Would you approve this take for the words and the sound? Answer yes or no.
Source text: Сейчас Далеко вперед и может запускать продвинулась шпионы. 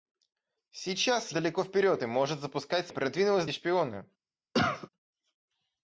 no